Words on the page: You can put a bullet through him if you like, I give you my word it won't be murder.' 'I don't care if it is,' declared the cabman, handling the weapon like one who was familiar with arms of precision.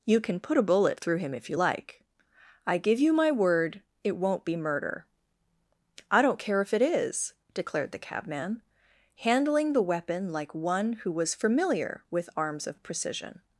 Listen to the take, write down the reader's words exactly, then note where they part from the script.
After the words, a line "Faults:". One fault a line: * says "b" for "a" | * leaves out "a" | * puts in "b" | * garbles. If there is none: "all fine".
You can put a bullet through him if you like, I give you my word it won't be murder.' 'I don't care if it is,' declared the cabman, handling the weapon like one who was familiar with arms of precision.
Faults:
all fine